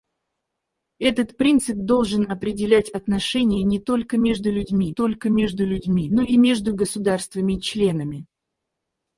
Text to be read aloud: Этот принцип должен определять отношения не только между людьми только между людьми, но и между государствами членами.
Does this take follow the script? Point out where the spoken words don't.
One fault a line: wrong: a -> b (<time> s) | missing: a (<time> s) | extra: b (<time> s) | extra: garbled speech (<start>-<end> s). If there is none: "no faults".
no faults